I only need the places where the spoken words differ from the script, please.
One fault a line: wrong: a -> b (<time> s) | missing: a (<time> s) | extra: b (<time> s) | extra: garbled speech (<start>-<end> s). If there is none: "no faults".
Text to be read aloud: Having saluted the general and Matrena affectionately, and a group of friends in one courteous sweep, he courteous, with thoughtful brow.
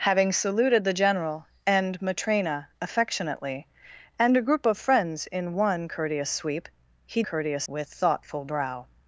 no faults